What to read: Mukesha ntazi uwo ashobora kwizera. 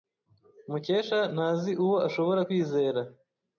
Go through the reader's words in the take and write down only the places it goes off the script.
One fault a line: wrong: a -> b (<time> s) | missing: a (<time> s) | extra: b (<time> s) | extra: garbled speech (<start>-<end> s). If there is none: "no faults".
no faults